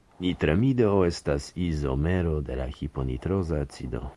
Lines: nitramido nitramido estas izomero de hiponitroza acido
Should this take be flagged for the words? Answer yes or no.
yes